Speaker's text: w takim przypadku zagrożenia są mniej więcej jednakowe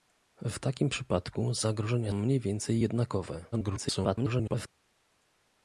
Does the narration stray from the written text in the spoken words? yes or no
yes